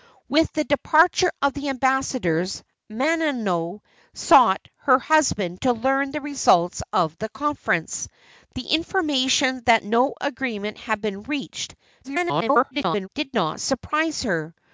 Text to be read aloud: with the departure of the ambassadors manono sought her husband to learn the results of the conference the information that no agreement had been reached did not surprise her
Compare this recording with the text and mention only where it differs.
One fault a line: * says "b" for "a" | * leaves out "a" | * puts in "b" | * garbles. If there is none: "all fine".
* garbles